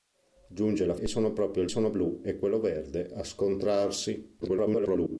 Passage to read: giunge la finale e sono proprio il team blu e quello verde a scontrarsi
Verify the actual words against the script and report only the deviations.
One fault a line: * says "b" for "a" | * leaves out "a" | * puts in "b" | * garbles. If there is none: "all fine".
* leaves out "finale"
* says "sono" for "team"
* garbles